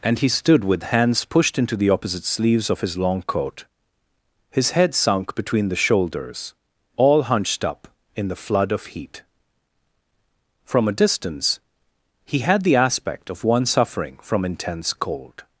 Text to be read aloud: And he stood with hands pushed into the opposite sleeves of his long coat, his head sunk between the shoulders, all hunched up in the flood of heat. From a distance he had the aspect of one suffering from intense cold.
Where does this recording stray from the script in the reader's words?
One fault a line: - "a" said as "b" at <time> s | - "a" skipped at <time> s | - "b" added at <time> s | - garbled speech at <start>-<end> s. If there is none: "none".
none